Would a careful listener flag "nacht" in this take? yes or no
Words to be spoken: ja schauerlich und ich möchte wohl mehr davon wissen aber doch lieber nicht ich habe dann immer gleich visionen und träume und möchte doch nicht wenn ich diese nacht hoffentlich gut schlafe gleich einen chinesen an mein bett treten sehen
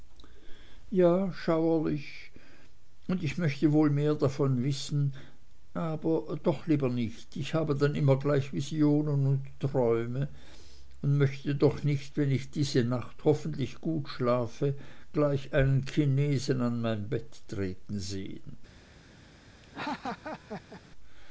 no